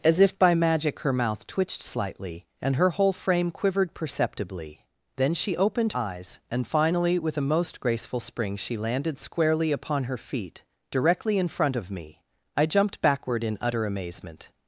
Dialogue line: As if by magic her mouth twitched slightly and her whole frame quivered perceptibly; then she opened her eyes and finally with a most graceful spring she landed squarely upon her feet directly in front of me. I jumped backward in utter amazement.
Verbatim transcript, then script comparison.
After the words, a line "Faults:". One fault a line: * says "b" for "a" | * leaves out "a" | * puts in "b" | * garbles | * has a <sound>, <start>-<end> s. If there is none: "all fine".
As if by magic her mouth twitched slightly and her whole frame quivered perceptibly; then she opened eyes and finally with a most graceful spring she landed squarely upon her feet directly in front of me. I jumped backward in utter amazement.
Faults:
* leaves out "her"